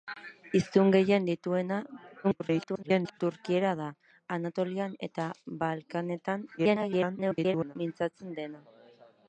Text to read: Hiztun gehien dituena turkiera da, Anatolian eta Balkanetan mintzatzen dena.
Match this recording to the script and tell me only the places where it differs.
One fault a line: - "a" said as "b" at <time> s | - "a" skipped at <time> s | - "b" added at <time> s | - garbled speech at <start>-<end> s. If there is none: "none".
- garbled speech at 2.2-3.2 s
- garbled speech at 6.6-7.8 s